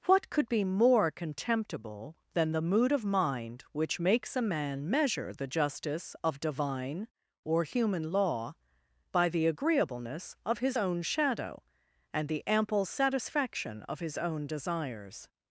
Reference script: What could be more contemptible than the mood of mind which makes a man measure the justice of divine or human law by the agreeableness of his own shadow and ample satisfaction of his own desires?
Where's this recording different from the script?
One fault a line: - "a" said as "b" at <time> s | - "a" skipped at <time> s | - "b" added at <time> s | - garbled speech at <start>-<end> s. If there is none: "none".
- "the" added at 12.3 s